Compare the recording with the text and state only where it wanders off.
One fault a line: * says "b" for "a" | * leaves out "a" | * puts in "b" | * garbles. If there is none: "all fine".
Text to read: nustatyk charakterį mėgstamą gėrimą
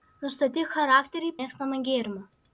all fine